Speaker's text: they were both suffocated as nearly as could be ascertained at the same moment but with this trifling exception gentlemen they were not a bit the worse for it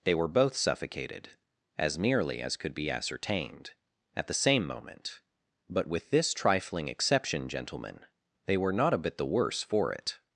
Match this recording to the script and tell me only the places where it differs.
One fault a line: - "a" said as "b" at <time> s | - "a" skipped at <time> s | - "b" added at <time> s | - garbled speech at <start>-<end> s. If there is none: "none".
none